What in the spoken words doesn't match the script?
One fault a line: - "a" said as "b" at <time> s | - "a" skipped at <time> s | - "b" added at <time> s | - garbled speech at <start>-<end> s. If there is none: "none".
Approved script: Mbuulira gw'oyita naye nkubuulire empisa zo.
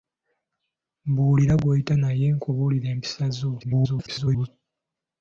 - garbled speech at 3.6-4.5 s